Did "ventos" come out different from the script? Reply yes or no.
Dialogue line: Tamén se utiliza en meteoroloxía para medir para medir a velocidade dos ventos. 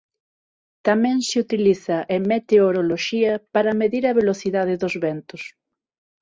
no